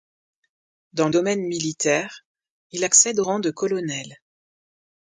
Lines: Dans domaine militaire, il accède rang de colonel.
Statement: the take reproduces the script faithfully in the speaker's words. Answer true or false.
true